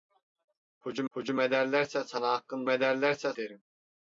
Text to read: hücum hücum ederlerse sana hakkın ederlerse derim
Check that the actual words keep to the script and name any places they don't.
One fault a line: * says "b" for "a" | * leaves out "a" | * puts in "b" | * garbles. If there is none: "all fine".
all fine